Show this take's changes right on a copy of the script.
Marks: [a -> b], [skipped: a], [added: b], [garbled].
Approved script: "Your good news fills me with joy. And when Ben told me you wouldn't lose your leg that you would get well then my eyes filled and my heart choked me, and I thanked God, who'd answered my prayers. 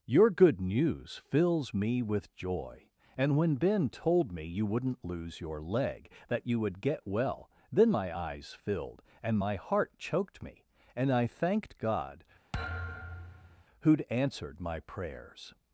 "Your good news fills me with joy. And when Ben told me you wouldn't lose your leg that you would get well then my eyes filled and my heart choked me, and I thanked God, who'd answered my prayers.